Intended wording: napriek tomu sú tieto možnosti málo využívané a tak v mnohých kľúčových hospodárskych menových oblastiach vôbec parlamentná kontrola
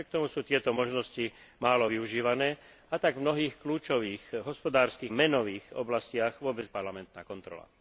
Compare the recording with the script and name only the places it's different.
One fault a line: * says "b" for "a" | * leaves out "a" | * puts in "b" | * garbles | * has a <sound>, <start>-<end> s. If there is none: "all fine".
all fine